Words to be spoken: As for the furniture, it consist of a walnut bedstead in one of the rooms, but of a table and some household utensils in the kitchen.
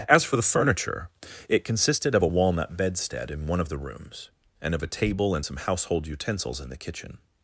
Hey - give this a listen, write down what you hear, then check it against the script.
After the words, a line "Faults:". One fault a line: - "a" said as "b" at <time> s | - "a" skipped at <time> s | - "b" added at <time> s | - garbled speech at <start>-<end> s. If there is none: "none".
As for the furniture, it consisted of a walnut bedstead in one of the rooms, and of a table and some household utensils in the kitchen.
Faults:
- "consist" said as "consisted" at 1.6 s
- "but" said as "and" at 4.6 s